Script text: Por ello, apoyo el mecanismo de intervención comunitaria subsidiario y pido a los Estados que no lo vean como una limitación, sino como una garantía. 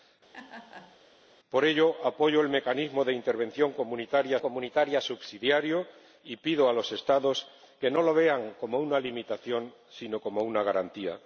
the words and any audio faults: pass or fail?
fail